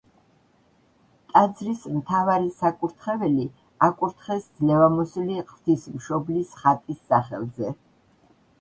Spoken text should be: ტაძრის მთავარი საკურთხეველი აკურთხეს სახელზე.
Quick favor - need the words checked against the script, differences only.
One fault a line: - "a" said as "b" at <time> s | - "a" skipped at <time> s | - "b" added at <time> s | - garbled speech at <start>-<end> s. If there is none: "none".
- "ძლევამოსილი ღვთისმშობლის ხატის" added at 4.6 s